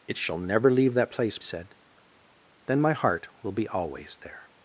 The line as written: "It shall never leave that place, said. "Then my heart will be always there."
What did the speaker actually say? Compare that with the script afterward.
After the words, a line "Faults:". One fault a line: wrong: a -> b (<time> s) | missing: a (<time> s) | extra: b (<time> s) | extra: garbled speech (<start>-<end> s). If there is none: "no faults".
"It shall never leave that place, said. "Then my heart will be always there."
Faults:
no faults